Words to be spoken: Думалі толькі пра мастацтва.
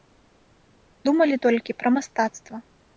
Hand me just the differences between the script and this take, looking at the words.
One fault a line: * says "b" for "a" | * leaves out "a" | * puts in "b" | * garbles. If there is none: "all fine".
all fine